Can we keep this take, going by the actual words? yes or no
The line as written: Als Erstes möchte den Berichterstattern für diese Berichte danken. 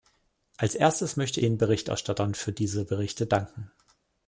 yes